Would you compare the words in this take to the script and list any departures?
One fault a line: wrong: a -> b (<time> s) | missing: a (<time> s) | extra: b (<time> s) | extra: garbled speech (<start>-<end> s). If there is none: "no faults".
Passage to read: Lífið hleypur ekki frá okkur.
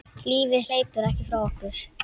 no faults